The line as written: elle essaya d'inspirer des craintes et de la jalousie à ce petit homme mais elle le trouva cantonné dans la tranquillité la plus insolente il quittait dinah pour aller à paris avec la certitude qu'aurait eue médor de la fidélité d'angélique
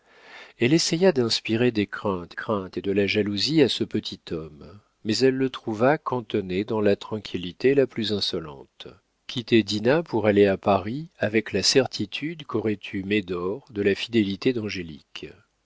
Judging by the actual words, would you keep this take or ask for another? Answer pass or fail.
fail